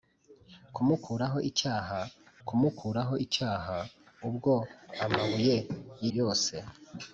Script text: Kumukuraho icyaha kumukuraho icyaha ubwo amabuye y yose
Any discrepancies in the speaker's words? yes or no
no